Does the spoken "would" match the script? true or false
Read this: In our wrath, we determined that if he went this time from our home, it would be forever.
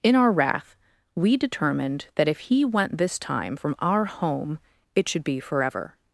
false